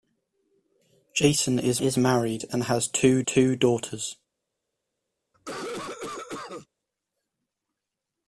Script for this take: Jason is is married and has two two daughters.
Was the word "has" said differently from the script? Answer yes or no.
no